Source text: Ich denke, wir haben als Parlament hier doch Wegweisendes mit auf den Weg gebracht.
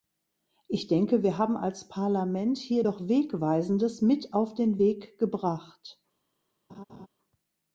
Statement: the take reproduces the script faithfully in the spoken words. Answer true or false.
true